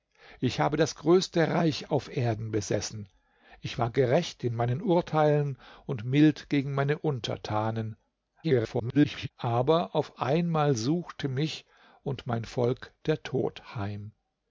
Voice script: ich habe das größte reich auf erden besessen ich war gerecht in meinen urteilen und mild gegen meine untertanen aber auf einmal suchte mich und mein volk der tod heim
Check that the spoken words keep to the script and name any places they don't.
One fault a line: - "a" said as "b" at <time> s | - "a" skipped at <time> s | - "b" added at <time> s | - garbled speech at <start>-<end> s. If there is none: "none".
- garbled speech at 8.4-9.3 s